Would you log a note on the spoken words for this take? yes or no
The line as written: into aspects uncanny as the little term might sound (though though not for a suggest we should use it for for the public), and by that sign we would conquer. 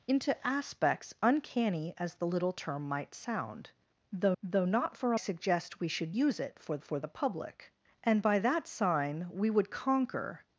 no